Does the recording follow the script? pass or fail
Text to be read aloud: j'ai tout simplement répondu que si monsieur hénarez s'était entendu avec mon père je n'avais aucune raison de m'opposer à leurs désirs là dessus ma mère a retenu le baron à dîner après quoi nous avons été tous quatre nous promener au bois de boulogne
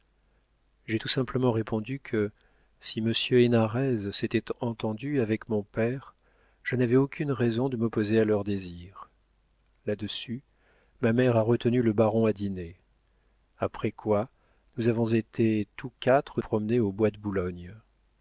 fail